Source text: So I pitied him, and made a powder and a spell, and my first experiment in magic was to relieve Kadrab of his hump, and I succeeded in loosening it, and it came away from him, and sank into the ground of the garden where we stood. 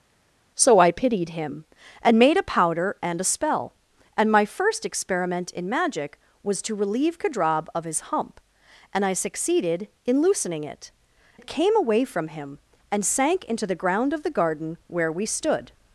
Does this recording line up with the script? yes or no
no